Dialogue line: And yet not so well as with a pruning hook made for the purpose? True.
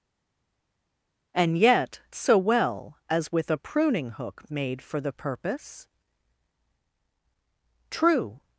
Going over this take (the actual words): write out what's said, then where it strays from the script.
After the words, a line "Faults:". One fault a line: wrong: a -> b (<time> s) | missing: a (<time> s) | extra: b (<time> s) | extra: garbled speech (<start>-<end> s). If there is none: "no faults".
And yet so well as with a pruning hook made for the purpose? True.
Faults:
missing: not (2.0 s)